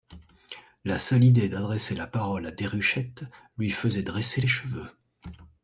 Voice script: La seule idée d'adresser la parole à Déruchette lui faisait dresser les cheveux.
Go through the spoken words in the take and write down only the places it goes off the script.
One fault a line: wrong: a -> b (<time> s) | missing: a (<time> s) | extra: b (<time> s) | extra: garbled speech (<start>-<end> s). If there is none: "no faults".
no faults